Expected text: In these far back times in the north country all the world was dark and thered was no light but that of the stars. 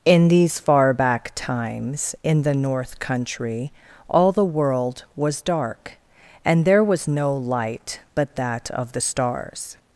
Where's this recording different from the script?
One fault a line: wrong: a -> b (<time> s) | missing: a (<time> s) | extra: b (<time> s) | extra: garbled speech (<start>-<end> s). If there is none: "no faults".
wrong: thered -> there (6.6 s)